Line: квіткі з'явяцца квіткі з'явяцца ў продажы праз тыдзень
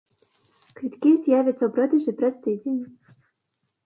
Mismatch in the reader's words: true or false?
true